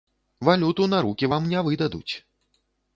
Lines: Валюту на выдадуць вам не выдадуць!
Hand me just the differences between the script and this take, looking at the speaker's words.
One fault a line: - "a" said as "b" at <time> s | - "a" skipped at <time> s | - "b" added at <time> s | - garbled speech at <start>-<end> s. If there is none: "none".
- "выдадуць" said as "рукі" at 1.1 s